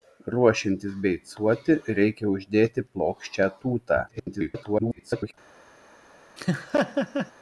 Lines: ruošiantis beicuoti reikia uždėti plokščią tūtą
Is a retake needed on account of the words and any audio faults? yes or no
yes